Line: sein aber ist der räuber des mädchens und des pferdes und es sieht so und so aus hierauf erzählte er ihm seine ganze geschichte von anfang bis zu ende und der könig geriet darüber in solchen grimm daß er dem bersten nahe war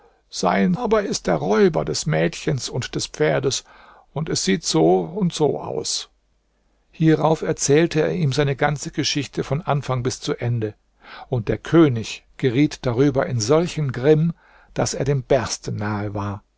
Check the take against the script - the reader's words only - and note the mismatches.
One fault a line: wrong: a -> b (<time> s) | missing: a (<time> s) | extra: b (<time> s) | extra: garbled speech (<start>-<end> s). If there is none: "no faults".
no faults